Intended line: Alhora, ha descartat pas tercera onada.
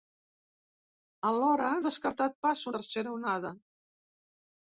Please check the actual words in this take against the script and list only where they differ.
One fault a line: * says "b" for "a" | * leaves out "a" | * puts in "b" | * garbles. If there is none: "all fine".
all fine